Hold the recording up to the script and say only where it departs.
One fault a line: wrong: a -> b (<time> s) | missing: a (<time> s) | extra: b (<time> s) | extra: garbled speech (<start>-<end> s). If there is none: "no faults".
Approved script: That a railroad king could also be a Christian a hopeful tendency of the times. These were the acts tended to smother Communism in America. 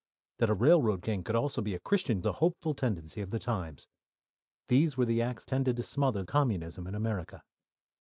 no faults